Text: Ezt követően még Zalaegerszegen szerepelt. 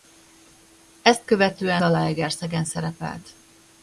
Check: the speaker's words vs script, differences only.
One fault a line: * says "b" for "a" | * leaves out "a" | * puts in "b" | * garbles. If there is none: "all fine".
* leaves out "még"